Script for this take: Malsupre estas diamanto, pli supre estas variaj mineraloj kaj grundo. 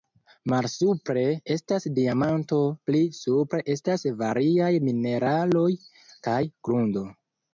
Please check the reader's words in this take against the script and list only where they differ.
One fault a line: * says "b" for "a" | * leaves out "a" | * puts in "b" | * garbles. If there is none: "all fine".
all fine